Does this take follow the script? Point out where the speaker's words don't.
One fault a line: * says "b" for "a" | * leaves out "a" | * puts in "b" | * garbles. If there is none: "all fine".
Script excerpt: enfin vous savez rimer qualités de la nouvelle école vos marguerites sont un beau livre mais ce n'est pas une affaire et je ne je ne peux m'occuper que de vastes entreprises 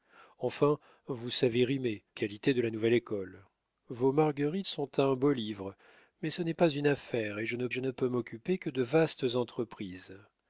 all fine